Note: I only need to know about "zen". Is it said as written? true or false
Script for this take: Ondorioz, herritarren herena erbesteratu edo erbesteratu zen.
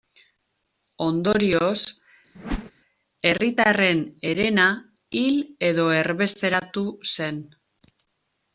true